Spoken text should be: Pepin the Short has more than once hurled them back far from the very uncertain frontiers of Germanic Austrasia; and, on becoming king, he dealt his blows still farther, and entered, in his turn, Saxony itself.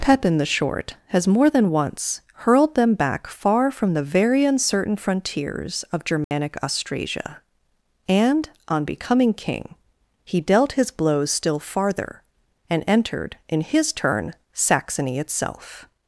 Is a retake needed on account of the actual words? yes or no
no